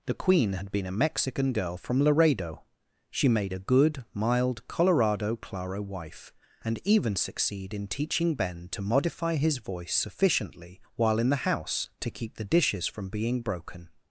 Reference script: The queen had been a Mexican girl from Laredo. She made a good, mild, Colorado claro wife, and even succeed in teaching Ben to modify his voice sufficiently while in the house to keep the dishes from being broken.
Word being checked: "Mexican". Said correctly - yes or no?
yes